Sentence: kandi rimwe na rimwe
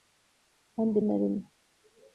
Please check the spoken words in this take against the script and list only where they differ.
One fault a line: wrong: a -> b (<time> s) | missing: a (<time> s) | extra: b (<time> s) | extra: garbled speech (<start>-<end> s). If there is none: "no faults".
missing: rimwe (0.9 s)